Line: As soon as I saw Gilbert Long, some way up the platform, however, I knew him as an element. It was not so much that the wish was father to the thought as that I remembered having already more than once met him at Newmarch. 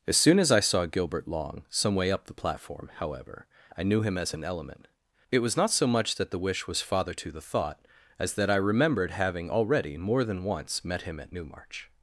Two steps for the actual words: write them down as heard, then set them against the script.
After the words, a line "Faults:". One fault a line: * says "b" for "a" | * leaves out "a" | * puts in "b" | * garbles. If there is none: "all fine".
As soon as I saw Gilbert Long, some way up the platform, however, I knew him as an element. It was not so much that the wish was father to the thought as that I remembered having already more than once met him at Newmarch.
Faults:
all fine